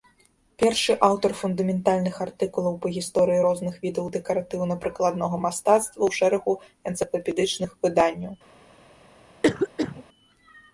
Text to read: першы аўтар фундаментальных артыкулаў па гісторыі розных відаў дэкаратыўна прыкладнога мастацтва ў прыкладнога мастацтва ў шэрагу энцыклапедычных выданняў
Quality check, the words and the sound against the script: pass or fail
fail